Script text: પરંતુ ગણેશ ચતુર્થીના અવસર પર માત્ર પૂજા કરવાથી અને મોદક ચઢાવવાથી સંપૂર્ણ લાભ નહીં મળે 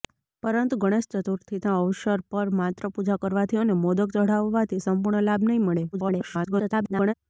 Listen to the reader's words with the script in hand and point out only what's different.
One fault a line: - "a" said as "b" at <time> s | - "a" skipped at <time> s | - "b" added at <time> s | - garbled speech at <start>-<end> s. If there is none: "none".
- garbled speech at 5.9-7.1 s